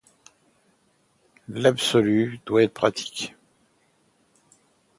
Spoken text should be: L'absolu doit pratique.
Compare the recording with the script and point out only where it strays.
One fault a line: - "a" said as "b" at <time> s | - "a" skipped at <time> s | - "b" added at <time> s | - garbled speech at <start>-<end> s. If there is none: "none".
- "être" added at 2.6 s